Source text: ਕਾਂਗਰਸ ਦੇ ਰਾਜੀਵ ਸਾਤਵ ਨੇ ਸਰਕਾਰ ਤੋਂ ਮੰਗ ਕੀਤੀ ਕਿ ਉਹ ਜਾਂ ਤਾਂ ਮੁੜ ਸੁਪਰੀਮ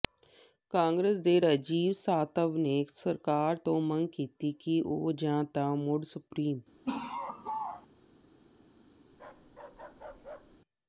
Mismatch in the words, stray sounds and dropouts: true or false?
true